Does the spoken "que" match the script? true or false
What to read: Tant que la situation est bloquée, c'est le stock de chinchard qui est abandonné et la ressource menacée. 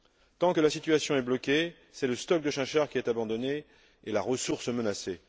true